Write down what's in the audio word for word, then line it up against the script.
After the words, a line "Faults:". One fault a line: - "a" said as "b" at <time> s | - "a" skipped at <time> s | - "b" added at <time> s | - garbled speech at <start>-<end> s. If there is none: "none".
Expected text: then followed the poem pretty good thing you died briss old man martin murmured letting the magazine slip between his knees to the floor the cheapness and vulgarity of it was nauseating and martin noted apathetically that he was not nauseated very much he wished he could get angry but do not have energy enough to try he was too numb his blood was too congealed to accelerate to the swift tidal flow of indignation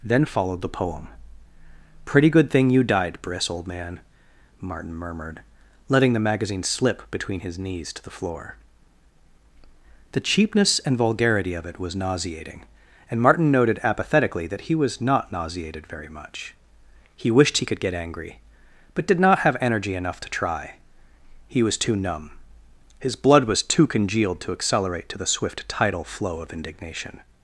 then followed the poem pretty good thing you died briss old man martin murmured letting the magazine slip between his knees to the floor the cheapness and vulgarity of it was nauseating and martin noted apathetically that he was not nauseated very much he wished he could get angry but did not have energy enough to try he was too numb his blood was too congealed to accelerate to the swift tidal flow of indignation
Faults:
- "do" said as "did" at 19.1 s